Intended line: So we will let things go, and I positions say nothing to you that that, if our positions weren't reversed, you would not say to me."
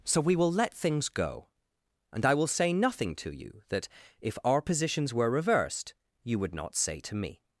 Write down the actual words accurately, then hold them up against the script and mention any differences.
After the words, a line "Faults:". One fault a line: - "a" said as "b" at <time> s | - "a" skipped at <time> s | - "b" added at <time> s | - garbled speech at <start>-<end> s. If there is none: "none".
So we will let things go, and I will say nothing to you that, if our positions were reversed, you would not say to me."
Faults:
- "positions" said as "will" at 2.3 s
- "that" skipped at 3.9 s
- "weren't" said as "were" at 5.1 s